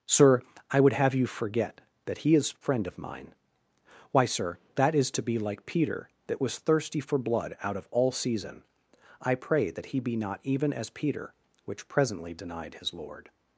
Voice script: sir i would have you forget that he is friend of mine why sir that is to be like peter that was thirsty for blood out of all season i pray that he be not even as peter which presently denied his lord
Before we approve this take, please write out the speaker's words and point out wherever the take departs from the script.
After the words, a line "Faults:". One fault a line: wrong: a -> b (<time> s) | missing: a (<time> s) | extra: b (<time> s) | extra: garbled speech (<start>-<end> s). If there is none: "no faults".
sir i would have you forget that he is friend of mine why sir that is to be like peter that was thirsty for blood out of all season i pray that he be not even as peter which presently denied his lord
Faults:
no faults